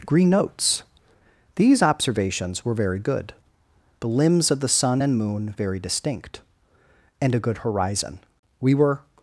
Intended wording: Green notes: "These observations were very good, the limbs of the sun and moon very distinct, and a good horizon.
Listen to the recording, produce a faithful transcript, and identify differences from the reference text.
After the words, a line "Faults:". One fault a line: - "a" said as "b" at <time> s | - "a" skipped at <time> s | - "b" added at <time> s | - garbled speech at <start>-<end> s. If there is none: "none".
Green notes: "These observations were very good, the limbs of the sun and moon very distinct, and a good horizon. We were
Faults:
- "We were" added at 8.6 s